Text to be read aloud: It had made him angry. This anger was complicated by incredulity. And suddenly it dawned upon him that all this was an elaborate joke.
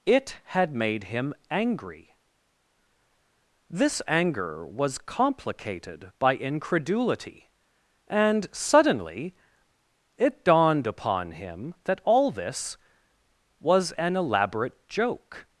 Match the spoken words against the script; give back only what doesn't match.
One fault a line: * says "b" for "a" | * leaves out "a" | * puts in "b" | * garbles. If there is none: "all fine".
all fine